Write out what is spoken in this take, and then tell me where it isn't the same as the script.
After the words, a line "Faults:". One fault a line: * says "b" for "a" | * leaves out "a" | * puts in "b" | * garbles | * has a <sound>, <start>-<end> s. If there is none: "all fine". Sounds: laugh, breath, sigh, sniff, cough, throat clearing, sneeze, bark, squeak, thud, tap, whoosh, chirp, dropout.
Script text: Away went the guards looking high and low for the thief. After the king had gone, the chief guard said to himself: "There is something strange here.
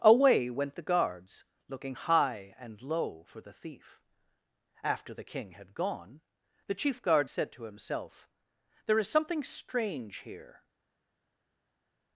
Away went the guards looking high and low for the thief. After the king had gone, the chief guard said to himself: "There is something strange here.
Faults:
all fine